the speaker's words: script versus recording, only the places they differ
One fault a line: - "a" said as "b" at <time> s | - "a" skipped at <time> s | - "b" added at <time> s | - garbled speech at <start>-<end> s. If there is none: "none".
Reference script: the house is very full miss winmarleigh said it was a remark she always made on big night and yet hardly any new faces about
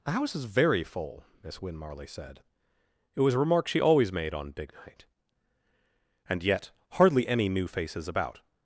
none